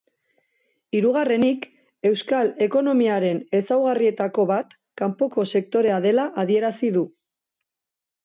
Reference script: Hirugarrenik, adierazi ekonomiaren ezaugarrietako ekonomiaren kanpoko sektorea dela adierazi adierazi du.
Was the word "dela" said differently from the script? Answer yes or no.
no